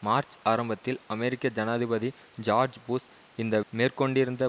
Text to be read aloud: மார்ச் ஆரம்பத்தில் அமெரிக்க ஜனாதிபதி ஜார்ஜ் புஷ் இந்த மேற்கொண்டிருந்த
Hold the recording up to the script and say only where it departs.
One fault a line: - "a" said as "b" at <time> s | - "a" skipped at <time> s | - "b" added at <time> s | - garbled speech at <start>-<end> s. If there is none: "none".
none